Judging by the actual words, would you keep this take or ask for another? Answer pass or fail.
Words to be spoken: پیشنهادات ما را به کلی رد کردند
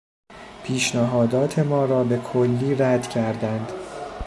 pass